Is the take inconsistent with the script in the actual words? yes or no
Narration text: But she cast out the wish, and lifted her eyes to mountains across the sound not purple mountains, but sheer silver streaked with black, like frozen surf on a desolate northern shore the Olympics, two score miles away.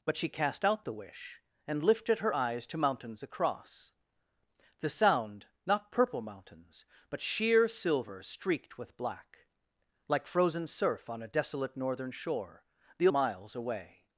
yes